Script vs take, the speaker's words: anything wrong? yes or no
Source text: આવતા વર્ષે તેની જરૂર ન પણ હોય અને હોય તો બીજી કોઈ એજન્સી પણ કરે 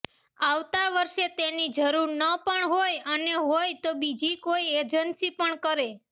no